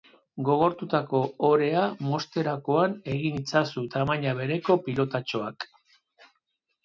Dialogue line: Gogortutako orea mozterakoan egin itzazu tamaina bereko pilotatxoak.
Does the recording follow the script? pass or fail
pass